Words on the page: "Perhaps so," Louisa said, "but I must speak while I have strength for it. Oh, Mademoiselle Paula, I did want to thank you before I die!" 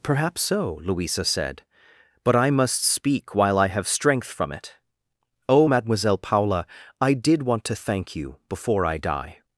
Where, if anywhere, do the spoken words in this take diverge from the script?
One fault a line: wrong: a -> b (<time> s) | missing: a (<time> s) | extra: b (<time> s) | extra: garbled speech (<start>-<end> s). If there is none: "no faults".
wrong: for -> from (4.3 s)